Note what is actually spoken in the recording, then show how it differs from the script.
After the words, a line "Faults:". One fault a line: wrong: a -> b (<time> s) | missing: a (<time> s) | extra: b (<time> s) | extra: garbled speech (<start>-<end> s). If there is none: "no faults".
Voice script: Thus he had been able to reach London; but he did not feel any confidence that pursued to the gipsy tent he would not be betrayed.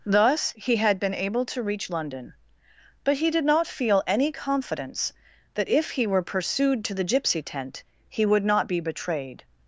Thus he had been able to reach London; but he did not feel any confidence that if he were pursued to the gipsy tent he would not be betrayed.
Faults:
extra: if he were (5.7 s)